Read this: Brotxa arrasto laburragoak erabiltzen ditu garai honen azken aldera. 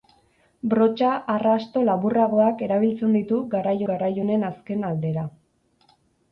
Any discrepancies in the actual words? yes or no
yes